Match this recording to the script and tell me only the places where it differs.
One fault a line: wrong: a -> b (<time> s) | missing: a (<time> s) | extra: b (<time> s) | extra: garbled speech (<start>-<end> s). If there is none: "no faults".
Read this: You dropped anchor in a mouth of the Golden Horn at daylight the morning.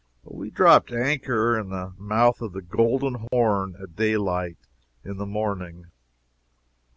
wrong: You -> We (0.2 s)
wrong: a -> the (1.7 s)
extra: in (5.0 s)